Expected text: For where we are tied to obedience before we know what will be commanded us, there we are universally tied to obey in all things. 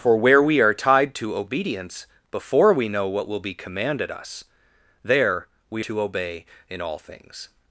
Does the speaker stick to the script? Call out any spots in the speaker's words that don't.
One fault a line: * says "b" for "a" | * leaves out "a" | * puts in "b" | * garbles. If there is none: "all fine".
* leaves out "are universally tied"